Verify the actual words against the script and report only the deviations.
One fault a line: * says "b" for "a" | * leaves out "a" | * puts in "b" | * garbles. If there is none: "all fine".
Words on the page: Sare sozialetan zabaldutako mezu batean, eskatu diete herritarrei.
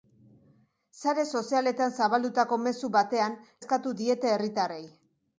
all fine